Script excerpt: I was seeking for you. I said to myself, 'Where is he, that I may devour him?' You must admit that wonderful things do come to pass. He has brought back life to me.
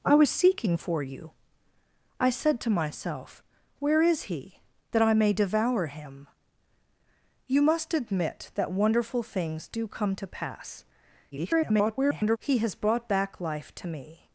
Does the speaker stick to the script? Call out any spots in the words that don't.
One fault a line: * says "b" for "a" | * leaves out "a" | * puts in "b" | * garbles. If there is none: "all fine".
* garbles